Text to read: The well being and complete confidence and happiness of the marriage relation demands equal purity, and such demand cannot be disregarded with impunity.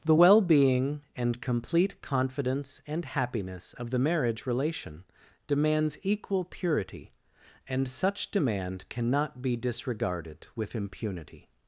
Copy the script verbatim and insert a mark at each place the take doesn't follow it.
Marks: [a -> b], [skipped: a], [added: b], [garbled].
The well being and complete confidence and happiness of the marriage relation demands equal purity, and such demand cannot be disregarded with impunity.